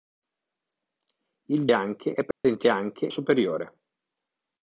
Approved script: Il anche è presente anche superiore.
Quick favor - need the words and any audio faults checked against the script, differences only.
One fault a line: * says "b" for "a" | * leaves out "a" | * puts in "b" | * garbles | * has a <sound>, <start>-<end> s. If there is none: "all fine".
* has a dropout, 2.3-2.4 s